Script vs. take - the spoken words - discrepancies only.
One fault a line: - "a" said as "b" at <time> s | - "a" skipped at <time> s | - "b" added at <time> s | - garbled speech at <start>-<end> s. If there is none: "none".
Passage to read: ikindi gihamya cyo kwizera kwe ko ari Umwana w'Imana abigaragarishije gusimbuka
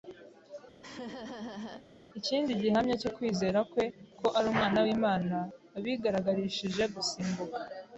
none